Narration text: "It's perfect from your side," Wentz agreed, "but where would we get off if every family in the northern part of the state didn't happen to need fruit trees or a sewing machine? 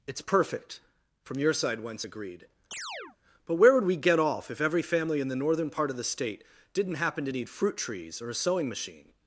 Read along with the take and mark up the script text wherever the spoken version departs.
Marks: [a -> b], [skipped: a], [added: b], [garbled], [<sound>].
"It's perfect from your side," Wentz agreed, [chirp] "but where would we get off if every family in the northern part of the state didn't happen to need fruit trees or a sewing machine?